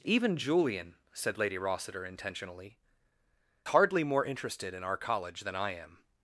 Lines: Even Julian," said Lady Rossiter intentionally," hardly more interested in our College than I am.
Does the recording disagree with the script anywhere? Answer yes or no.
no